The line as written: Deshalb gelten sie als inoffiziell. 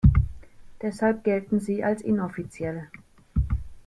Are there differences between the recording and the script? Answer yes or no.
no